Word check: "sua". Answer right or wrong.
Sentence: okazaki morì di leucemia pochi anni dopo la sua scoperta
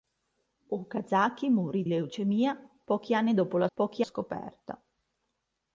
wrong